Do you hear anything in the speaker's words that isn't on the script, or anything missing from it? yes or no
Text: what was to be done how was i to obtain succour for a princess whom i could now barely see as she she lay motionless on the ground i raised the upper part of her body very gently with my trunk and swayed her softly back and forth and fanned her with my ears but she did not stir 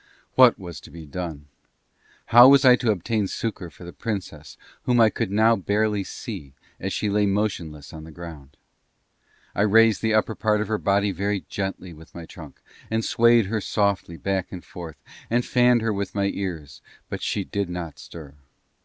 yes